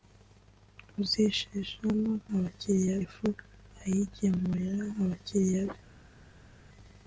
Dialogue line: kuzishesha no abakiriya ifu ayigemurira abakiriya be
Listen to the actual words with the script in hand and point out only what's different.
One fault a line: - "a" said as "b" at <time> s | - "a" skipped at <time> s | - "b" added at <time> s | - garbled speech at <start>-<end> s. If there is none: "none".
none